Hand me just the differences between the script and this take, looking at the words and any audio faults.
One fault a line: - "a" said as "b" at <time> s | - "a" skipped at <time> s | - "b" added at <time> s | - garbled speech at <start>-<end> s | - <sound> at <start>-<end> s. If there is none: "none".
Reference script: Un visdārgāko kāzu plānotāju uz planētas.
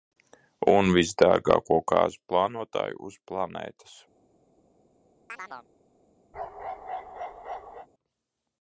- chirp at 5.3-5.7 s
- bark at 6.3-7.9 s